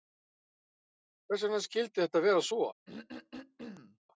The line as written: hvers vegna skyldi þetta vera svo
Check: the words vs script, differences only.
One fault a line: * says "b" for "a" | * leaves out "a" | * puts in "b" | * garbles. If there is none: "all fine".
all fine